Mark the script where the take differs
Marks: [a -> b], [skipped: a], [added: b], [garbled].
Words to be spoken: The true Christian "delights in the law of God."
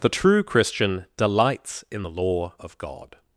The true Christian "delights in the law of God."